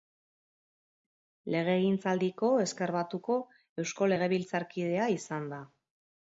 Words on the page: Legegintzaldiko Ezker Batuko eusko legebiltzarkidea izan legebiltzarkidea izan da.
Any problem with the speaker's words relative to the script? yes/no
yes